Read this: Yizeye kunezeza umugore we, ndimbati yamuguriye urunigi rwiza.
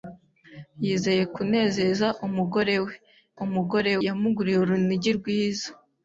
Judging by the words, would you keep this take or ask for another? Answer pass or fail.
fail